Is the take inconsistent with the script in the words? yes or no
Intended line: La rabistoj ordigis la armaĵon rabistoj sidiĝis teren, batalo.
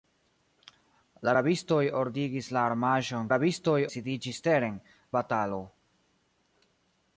no